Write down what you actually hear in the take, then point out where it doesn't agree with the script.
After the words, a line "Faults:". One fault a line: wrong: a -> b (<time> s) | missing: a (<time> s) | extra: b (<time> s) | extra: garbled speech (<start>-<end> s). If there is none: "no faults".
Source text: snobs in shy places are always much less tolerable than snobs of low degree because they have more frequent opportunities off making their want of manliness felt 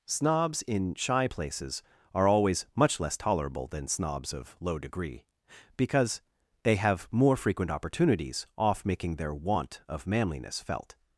snobs in shy places are always much less tolerable than snobs of low degree because they have more frequent opportunities off making their want of manliness felt
Faults:
no faults